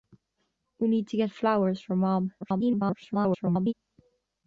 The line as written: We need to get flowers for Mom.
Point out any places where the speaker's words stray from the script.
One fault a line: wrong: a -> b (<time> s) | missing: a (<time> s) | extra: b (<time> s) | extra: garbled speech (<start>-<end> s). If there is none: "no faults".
extra: garbled speech (2.4-3.7 s)